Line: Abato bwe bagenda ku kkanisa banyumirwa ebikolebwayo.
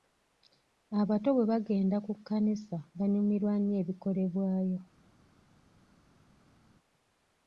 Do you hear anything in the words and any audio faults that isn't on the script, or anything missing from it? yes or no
yes